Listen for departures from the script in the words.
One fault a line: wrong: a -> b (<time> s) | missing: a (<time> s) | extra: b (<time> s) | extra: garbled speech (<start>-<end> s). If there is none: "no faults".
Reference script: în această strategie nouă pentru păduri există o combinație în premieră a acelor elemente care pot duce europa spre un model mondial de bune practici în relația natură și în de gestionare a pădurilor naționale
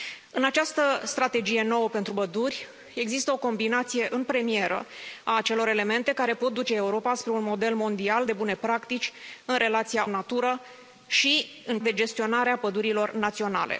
no faults